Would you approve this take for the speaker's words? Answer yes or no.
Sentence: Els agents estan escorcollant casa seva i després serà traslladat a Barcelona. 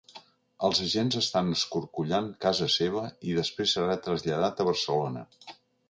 yes